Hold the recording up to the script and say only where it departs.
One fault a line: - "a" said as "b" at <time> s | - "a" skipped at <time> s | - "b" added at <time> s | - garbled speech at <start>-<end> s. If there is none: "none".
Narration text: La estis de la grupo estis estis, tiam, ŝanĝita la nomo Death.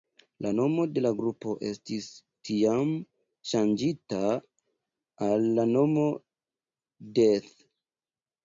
- "estis" said as "nomo" at 0.6 s
- "estis" skipped at 2.1 s
- "al" added at 5.3 s